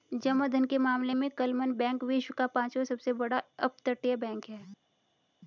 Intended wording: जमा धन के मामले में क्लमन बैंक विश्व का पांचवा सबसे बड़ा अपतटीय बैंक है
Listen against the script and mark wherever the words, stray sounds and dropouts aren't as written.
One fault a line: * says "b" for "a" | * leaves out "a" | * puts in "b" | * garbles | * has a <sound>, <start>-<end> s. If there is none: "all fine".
all fine